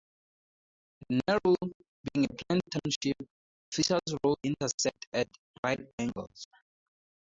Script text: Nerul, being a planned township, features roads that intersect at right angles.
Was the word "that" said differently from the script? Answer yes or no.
yes